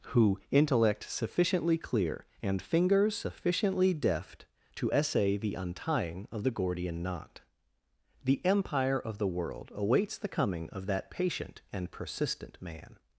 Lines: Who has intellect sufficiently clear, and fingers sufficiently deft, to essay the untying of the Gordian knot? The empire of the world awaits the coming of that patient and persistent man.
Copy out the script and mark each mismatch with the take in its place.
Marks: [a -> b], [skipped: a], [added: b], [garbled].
Who [skipped: has] intellect sufficiently clear, and fingers sufficiently deft, to essay the untying of the Gordian knot? The empire of the world awaits the coming of that patient and persistent man.